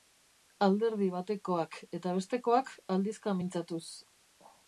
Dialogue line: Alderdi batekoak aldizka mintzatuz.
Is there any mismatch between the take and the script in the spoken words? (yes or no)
yes